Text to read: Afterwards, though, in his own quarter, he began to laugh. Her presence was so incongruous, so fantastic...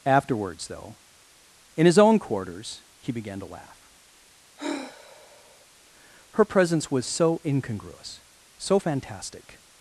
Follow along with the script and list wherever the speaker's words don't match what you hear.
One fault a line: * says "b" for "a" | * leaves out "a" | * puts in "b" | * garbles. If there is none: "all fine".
* says "quarters" for "quarter"